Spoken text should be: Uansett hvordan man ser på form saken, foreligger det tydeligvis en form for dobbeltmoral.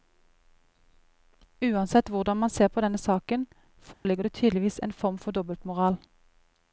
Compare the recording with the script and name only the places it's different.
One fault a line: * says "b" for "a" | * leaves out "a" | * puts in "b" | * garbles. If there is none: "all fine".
* says "denne" for "form"